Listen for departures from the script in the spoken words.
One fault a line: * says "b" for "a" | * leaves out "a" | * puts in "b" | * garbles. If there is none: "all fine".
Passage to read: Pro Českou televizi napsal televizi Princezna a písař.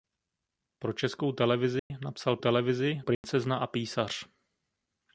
all fine